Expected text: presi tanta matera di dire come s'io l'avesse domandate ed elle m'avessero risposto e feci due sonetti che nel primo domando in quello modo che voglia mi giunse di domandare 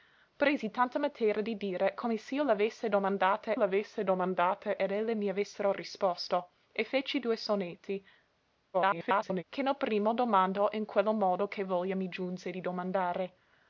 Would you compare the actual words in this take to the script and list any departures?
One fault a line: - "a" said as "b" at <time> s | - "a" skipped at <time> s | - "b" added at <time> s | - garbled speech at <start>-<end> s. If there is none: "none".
- "l'avesse domandate" added at 3.5 s
- garbled speech at 8.7-9.4 s